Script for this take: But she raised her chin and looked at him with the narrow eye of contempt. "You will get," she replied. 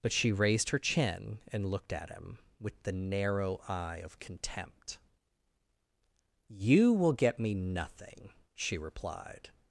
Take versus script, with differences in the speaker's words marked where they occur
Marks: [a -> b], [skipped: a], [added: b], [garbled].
But she raised her chin and looked at him with the narrow eye of contempt. "You will get," [added: me nothing] she replied.